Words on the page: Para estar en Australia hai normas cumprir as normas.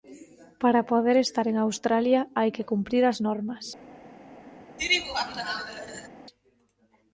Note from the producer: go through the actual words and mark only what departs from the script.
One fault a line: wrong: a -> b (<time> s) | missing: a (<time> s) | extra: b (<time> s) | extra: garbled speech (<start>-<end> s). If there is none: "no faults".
extra: poder (0.9 s)
wrong: normas -> que (2.6 s)